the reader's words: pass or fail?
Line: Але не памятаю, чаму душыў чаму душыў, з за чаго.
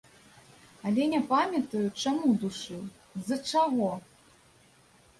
fail